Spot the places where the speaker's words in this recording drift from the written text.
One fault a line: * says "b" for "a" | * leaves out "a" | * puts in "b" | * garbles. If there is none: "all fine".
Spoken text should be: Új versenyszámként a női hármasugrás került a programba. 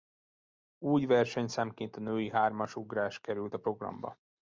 all fine